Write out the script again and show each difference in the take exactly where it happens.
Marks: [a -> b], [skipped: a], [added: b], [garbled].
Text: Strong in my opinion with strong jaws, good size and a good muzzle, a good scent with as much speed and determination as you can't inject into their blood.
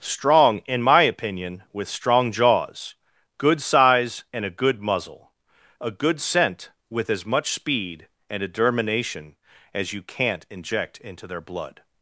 Strong in my opinion with strong jaws, good size and a good muzzle, a good scent with as much speed and determination as you can't inject into their blood.